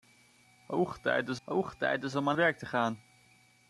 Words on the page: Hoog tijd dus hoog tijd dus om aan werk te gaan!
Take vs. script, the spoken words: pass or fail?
pass